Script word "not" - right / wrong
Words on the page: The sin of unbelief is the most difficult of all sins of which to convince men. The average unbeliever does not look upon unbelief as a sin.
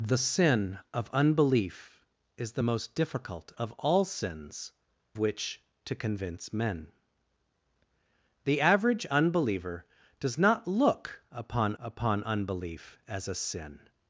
right